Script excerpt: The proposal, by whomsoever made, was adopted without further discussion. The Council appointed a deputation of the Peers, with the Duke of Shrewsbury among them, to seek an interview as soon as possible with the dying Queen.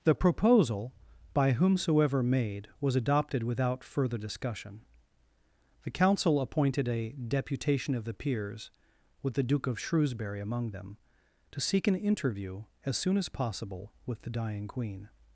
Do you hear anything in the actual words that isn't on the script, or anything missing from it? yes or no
no